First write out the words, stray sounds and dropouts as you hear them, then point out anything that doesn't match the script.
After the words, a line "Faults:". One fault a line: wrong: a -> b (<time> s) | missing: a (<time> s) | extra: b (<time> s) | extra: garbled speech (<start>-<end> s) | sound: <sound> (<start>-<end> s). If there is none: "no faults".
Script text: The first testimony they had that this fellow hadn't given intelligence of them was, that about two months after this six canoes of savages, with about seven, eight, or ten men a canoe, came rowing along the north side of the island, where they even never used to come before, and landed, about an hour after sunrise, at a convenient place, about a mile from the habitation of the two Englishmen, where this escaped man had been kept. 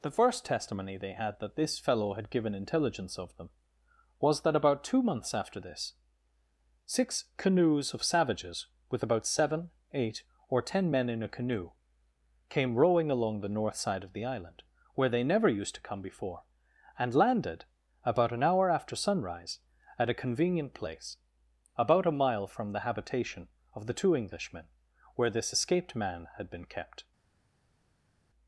The first testimony they had that this fellow had given intelligence of them was, that about two months after this six canoes of savages, with about seven, eight, or ten men in a canoe, came rowing along the north side of the island, where they never used to come before, and landed, about an hour after sunrise, at a convenient place, about a mile from the habitation of the two Englishmen, where this escaped man had been kept.
Faults:
wrong: hadn't -> had (2.1 s)
extra: in (11.1 s)
missing: even (15.2 s)